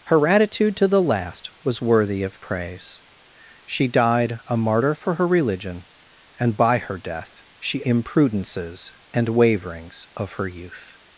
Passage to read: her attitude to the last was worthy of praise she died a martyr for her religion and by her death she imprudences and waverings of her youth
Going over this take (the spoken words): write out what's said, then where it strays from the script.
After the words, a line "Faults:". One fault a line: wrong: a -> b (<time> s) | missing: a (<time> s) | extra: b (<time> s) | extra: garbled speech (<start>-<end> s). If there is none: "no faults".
her attitude to the last was worthy of praise she died a martyr for her religion and by her death she imprudences and waverings of her youth
Faults:
no faults